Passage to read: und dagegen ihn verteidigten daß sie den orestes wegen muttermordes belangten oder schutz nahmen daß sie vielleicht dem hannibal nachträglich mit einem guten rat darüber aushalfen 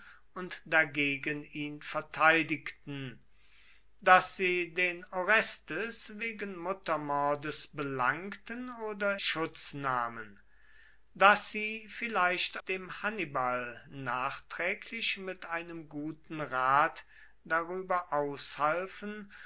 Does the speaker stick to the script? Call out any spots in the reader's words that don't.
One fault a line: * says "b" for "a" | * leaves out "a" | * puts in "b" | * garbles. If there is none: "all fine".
all fine